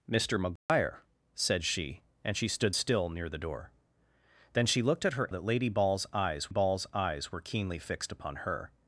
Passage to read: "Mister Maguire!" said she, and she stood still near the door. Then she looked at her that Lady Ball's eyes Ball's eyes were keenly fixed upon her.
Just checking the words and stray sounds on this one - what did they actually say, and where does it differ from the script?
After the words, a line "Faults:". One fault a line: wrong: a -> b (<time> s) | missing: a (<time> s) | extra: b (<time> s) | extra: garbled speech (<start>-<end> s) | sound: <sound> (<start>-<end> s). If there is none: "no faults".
"Mister Maguire!" said she, and she stood still near the door. Then she looked at her that Lady Ball's eyes Ball's eyes were keenly fixed upon her.
Faults:
sound: dropout (0.6-0.7 s)